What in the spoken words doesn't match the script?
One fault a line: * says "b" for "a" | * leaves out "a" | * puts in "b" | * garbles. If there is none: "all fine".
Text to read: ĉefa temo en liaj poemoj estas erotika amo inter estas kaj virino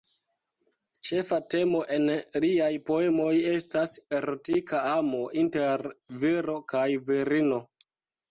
* says "viro" for "estas"